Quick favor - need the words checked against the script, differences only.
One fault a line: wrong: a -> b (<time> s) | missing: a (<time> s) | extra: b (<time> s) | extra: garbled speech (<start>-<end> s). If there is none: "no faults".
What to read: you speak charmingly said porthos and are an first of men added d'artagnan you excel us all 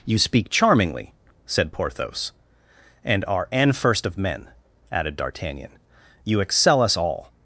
no faults